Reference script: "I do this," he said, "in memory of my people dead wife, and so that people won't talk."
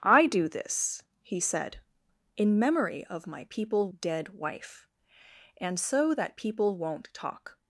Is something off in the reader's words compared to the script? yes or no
no